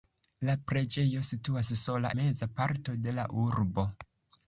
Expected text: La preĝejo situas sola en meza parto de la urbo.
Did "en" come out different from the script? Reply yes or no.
yes